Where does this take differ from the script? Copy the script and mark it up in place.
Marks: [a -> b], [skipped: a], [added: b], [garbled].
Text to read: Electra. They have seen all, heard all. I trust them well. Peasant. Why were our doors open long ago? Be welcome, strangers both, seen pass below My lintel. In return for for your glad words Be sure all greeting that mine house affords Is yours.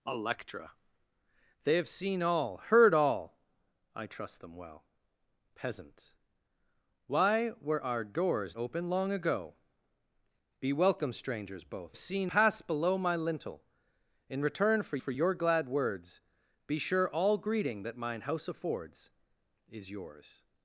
Electra. They have seen all, heard all. I trust them well. Peasant. Why were our doors open long ago? Be welcome, strangers both, seen pass below My lintel. In return for for your glad words Be sure all greeting that mine house affords Is yours.